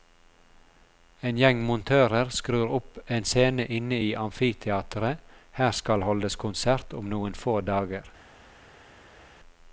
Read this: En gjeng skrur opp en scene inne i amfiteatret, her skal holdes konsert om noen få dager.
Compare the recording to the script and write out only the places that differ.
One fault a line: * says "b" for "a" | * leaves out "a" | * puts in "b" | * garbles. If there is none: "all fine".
* puts in "montører"